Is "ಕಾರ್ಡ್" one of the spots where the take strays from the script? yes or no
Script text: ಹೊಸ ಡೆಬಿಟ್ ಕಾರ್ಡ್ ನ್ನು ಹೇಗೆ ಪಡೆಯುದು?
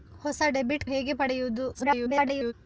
yes